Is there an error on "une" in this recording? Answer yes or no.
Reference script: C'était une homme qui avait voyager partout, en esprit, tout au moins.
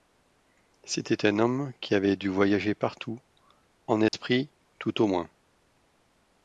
yes